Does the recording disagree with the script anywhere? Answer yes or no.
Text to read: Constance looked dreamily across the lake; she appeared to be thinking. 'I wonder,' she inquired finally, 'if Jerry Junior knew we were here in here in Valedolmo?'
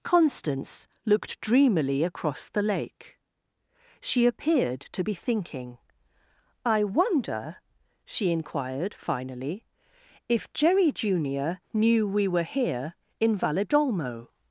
yes